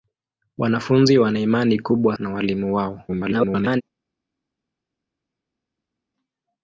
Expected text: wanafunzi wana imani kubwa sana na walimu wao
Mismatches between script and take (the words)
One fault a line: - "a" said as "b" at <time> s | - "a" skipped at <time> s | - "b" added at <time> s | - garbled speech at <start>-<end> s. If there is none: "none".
- "sana" skipped at 2.2 s
- garbled speech at 3.1-3.8 s